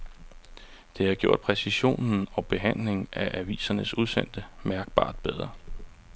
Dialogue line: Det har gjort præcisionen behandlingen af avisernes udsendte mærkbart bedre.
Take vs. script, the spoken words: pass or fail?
fail